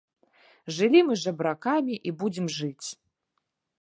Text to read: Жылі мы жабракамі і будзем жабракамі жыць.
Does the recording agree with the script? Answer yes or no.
no